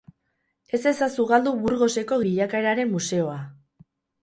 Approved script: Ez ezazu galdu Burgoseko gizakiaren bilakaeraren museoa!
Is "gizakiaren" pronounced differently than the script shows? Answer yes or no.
yes